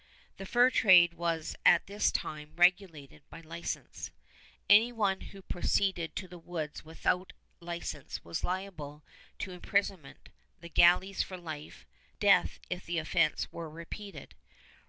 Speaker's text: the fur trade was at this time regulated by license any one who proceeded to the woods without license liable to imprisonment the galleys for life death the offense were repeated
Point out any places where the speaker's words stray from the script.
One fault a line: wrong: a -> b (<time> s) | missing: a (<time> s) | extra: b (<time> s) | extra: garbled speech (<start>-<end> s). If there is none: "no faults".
extra: was (8.2 s)
extra: if (12.7 s)